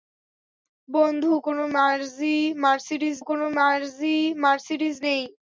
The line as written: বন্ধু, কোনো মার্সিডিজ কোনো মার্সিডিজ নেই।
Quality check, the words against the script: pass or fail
pass